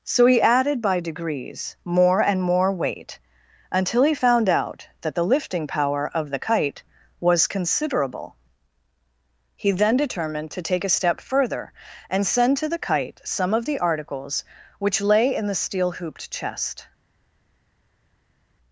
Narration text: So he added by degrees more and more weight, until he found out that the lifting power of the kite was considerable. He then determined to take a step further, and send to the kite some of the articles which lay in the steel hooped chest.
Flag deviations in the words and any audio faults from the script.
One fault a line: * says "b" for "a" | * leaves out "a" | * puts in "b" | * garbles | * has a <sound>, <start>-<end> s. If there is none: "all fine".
all fine